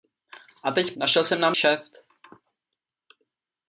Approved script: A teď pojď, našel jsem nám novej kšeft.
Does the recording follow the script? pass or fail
fail